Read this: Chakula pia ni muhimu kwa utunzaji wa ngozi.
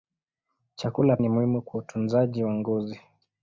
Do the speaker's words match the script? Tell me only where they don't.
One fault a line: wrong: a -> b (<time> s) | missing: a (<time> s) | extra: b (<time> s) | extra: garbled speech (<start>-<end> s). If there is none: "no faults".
missing: pia (1.2 s)